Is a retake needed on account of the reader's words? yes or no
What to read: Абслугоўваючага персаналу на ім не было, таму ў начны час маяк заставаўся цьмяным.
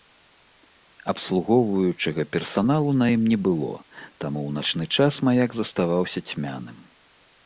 no